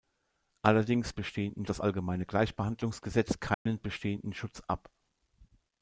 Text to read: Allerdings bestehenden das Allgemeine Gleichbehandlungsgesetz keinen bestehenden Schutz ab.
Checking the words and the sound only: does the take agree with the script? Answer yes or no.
no